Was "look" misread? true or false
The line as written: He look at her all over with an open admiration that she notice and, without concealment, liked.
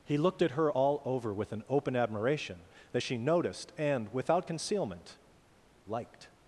true